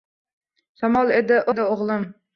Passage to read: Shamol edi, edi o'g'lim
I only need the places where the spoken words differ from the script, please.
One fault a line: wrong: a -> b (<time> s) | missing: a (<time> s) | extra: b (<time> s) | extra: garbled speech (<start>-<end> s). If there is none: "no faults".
no faults